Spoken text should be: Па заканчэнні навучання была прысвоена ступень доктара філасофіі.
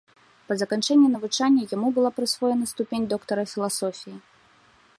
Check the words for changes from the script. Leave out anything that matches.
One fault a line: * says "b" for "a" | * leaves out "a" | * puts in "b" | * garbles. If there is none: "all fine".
* puts in "яму"